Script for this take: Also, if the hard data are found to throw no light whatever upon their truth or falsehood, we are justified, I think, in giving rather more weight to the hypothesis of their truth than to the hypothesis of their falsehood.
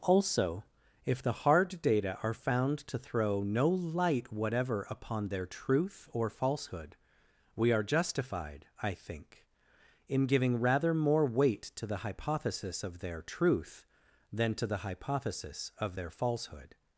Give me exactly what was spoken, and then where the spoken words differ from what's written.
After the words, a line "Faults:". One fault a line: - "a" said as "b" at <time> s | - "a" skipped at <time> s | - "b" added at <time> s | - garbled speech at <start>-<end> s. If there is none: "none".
Also, if the hard data are found to throw no light whatever upon their truth or falsehood, we are justified, I think, in giving rather more weight to the hypothesis of their truth than to the hypothesis of their falsehood.
Faults:
none